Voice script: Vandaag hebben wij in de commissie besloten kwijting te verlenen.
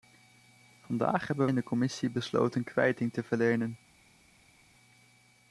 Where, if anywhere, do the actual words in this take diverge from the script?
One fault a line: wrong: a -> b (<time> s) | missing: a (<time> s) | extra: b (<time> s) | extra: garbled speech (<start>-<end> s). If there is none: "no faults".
missing: wij (1.5 s)